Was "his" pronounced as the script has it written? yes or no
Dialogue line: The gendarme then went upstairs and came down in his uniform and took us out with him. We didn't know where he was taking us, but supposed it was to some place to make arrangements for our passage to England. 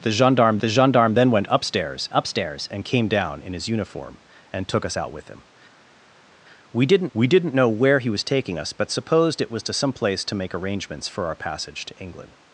yes